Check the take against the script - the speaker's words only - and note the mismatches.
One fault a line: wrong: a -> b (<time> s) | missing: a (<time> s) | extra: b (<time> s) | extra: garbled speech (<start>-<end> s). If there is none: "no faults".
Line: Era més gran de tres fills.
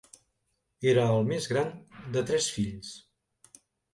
extra: el (1.2 s)